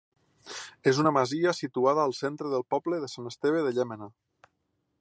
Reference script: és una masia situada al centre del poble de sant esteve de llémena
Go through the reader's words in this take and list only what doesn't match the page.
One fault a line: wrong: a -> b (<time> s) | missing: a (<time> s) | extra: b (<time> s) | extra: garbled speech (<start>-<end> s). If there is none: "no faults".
no faults